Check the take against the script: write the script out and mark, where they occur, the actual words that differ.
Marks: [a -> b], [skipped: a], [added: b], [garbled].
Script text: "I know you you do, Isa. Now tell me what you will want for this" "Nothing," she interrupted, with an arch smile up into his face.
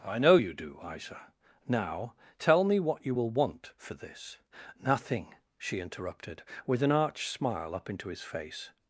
"I know you [skipped: you] do, Isa. Now tell me what you will want for this" "Nothing," she interrupted, with an arch smile up into his face.